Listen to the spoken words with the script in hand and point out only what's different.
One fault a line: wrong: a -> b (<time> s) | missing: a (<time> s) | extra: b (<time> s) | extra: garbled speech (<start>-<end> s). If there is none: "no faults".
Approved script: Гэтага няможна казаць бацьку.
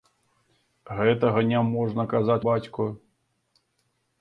no faults